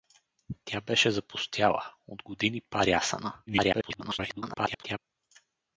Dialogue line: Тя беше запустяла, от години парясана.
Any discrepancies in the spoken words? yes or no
yes